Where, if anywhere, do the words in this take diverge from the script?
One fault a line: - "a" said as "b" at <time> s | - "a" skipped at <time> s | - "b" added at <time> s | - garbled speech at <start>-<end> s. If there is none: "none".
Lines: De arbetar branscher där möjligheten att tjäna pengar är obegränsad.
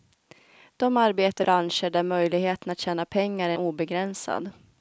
none